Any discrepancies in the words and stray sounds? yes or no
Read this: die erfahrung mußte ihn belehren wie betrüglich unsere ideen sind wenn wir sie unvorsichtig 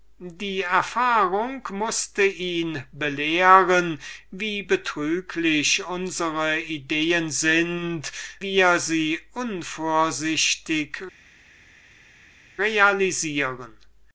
yes